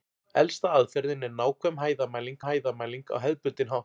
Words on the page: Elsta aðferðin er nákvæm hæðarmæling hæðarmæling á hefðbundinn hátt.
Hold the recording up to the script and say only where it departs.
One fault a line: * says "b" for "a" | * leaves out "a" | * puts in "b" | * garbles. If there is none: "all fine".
all fine